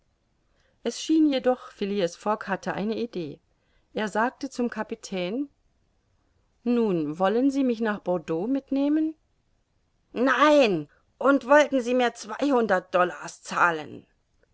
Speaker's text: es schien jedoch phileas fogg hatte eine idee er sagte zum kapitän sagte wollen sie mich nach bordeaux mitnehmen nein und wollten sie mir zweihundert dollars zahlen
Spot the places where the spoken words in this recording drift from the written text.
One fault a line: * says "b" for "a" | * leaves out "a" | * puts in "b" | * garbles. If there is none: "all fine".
* says "nun" for "sagte"